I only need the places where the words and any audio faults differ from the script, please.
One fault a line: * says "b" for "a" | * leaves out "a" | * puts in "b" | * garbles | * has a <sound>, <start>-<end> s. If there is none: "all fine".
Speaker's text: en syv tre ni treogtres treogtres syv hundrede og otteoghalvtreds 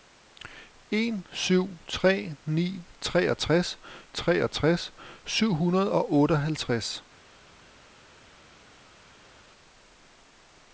all fine